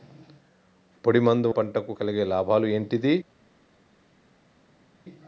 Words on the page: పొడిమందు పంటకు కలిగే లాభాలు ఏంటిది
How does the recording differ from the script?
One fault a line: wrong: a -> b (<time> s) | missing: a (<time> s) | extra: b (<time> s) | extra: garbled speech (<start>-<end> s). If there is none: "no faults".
no faults